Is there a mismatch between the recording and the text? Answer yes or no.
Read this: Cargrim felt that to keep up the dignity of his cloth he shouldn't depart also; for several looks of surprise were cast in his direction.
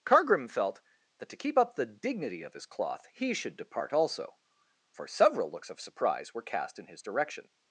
yes